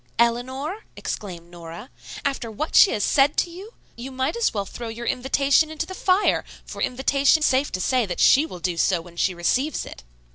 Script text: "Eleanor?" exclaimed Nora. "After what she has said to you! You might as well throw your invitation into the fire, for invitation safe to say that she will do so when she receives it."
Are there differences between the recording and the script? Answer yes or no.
no